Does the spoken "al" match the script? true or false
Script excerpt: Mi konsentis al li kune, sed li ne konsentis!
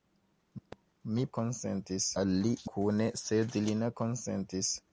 true